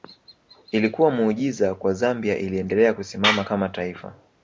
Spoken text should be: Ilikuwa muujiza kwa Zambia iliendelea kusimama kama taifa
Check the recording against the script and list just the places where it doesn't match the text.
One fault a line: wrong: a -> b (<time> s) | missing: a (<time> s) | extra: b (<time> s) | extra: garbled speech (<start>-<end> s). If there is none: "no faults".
no faults